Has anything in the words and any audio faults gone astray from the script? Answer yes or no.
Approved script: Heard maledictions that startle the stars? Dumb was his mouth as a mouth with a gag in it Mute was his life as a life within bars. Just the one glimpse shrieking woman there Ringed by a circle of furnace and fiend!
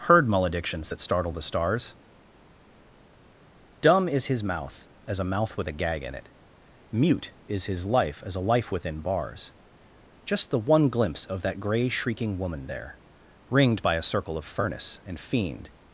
yes